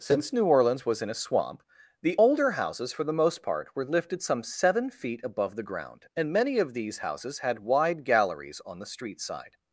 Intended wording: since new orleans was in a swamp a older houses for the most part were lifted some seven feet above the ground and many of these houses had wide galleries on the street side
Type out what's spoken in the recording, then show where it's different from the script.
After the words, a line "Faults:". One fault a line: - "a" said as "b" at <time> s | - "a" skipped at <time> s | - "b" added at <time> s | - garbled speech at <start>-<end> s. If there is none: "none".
since new orleans was in a swamp the older houses for the most part were lifted some seven feet above the ground and many of these houses had wide galleries on the street side
Faults:
- "a" said as "the" at 2.0 s